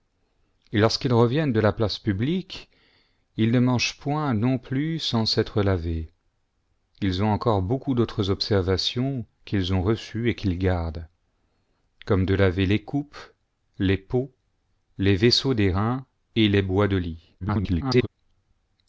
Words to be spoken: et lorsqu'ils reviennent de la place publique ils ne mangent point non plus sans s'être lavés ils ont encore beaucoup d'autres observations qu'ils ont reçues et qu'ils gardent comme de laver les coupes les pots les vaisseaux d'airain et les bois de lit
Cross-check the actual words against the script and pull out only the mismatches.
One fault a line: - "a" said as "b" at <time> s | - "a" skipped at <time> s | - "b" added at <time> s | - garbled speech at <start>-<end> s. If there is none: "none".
- garbled speech at 17.4-18.1 s